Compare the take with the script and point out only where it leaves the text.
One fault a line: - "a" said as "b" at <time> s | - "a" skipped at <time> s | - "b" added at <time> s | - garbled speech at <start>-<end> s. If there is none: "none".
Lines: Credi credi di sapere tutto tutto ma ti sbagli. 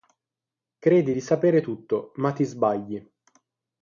- "credi" skipped at 1.1 s
- "tutto" skipped at 2.1 s